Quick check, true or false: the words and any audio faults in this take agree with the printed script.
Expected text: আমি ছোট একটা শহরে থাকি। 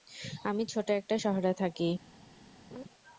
false